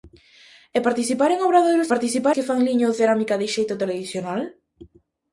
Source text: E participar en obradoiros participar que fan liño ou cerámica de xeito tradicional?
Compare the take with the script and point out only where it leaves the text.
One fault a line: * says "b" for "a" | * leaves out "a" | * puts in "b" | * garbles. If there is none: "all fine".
all fine